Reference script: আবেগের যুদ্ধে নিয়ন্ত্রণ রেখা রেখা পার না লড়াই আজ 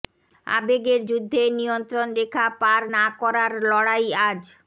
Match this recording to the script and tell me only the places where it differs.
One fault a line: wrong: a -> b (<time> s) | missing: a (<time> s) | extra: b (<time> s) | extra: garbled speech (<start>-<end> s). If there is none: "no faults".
missing: রেখা (2.5 s)
extra: করার (3.2 s)